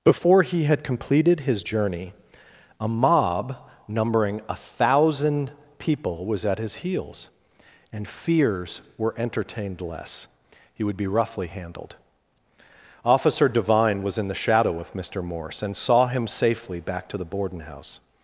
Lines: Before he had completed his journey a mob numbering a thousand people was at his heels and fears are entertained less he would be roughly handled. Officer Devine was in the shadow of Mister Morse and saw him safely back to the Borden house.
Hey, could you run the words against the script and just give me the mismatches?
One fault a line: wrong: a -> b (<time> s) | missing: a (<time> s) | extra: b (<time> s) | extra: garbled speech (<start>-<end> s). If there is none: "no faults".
wrong: are -> were (9.0 s)